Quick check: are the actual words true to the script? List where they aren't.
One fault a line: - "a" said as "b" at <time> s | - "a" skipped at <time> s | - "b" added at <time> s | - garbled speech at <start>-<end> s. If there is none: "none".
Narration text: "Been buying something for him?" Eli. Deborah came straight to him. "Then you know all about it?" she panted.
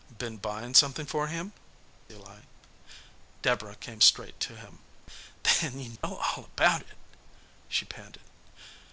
none